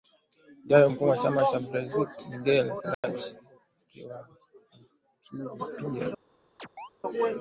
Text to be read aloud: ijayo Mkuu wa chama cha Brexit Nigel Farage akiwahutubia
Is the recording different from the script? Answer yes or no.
no